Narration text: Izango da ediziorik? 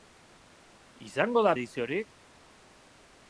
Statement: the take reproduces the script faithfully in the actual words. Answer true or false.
true